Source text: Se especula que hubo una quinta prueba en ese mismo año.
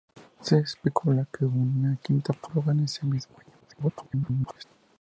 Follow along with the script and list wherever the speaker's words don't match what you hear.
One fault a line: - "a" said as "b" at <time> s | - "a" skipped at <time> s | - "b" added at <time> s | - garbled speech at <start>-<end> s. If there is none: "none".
- garbled speech at 3.6-4.6 s